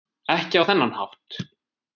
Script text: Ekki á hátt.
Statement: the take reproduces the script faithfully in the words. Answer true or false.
false